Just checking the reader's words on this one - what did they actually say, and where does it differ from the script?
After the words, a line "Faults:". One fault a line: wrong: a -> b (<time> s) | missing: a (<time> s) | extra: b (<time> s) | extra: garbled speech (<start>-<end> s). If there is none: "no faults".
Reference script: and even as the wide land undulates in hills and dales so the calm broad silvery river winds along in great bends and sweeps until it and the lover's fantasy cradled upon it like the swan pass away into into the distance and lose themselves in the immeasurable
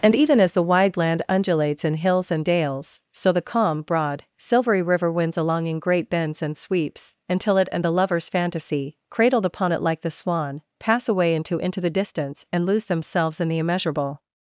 and even as the wide land undulates in hills and dales so the calm broad silvery river winds along in great bends and sweeps until it and the lover's fantasy cradled upon it like the swan pass away into into the distance and lose themselves in the immeasurable
Faults:
no faults